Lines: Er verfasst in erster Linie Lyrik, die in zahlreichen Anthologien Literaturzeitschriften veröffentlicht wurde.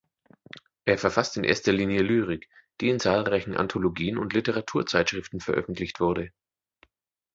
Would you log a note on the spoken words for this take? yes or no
yes